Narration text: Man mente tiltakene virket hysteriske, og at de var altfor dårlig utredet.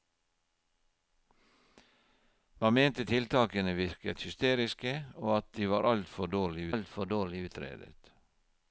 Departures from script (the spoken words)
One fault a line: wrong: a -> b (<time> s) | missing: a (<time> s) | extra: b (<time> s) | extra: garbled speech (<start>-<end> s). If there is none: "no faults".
extra: altfor dårlig (6.7 s)